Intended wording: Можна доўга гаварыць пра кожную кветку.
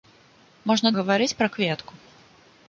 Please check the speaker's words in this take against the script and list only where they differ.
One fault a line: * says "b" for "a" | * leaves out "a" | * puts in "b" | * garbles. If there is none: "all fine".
* leaves out "доўга"
* leaves out "кожную"